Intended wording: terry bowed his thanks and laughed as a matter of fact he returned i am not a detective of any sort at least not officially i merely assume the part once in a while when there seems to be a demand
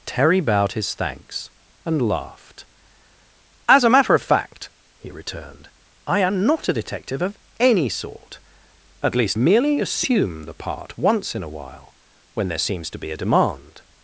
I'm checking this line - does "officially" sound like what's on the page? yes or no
no